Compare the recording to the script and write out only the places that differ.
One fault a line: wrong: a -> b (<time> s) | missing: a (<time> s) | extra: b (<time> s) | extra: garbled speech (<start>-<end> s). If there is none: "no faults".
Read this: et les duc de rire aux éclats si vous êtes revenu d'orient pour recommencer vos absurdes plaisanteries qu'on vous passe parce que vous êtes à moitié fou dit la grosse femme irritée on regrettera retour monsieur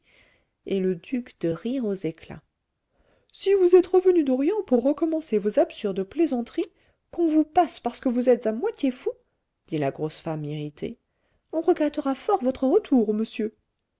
wrong: les -> le (0.8 s)
extra: fort votre (12.1 s)